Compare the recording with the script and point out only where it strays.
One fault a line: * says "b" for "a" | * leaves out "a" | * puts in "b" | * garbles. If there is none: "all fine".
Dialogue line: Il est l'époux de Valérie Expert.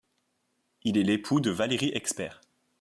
all fine